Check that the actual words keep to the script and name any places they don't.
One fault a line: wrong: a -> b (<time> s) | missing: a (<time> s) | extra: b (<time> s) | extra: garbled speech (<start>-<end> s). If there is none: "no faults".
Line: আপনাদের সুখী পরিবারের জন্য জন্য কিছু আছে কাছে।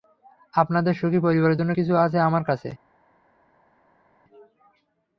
missing: জন্য (1.7 s)
extra: আমার (2.2 s)